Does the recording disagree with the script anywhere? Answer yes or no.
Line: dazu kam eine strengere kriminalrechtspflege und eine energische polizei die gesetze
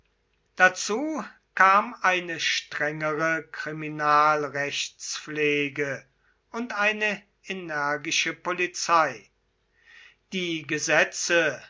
no